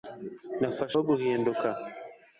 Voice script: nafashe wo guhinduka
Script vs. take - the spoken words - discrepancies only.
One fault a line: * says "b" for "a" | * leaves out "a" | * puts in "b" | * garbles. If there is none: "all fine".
all fine